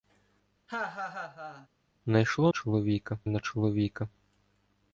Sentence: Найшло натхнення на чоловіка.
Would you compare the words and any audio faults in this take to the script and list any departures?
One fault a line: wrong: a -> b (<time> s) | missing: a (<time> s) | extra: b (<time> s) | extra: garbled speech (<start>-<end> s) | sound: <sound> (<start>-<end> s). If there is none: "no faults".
sound: laugh (0.7-1.7 s)
wrong: натхнення -> чоловіка (2.5 s)